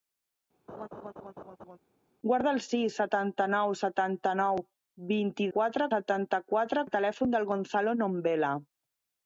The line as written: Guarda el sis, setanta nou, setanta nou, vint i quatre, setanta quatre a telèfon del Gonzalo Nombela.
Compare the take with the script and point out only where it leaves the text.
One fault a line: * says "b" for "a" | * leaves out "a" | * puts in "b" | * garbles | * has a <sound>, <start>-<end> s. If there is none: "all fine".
* has a laugh, 0.7-1.8 s